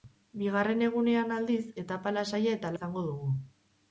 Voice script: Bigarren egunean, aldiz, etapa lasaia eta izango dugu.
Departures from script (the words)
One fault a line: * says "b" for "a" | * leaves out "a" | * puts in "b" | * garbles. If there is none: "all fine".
all fine